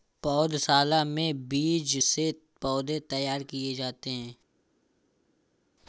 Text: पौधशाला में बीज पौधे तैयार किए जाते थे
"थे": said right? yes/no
no